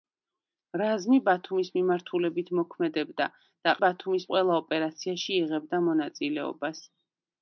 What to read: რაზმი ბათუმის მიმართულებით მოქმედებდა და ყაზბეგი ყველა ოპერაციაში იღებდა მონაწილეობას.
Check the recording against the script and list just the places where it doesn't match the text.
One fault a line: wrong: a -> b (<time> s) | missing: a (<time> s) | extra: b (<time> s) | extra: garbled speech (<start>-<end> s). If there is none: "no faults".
wrong: ყაზბეგი -> ბათუმის (3.8 s)